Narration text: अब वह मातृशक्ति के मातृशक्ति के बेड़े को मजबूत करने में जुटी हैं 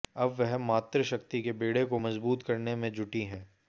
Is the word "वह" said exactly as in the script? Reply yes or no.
yes